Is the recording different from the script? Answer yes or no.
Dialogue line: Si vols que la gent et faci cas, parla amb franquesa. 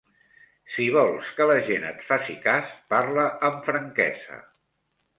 no